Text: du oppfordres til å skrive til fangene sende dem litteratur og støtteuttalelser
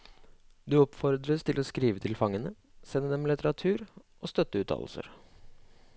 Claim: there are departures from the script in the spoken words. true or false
false